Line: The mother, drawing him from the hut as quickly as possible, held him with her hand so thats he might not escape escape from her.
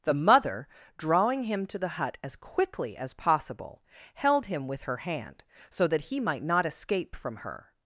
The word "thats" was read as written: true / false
false